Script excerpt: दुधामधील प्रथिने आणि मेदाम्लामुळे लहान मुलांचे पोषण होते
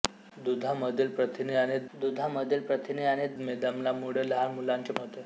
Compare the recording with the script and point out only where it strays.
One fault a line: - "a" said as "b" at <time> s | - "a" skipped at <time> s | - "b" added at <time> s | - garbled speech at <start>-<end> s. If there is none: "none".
- "दुधामधील प्रथिने आणि" added at 1.9 s
- "पोषण" skipped at 4.9 s